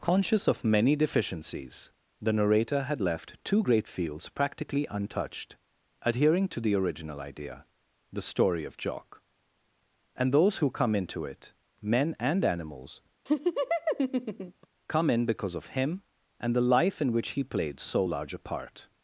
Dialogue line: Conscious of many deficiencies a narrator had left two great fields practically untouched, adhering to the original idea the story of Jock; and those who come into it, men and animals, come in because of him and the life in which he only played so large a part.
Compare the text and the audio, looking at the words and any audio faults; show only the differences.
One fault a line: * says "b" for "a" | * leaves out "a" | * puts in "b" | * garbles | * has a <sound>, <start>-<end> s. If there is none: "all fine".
* says "the" for "a"
* has a laugh, 13.3-14.7 s
* leaves out "only"